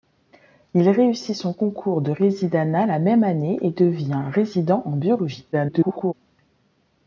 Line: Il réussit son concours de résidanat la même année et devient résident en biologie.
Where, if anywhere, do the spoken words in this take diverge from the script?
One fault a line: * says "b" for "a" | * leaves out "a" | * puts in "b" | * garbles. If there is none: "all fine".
* garbles